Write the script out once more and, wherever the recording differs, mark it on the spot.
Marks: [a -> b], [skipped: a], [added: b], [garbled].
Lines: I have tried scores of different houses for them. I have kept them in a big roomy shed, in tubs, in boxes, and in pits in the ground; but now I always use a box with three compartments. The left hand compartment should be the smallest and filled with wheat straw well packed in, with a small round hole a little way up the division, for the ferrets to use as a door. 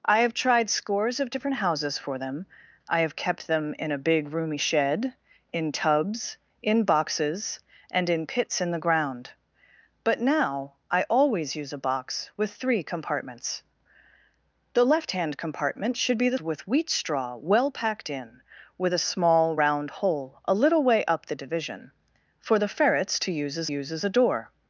I have tried scores of different houses for them. I have kept them in a big roomy shed, in tubs, in boxes, and in pits in the ground; but now I always use a box with three compartments. The left hand compartment should be the [skipped: smallest and filled] with wheat straw well packed in, with a small round hole a little way up the division, for the ferrets to use as [added: use as] a door.